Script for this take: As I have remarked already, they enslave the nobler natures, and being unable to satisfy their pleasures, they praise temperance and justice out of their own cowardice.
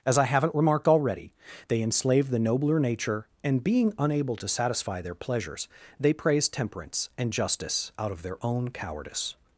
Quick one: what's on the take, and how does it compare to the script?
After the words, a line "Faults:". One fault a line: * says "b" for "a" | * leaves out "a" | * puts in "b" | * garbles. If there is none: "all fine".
As I haven't remarked already, they enslave the nobler nature, and being unable to satisfy their pleasures, they praise temperance and justice out of their own cowardice.
Faults:
* says "haven't" for "have"
* says "nature" for "natures"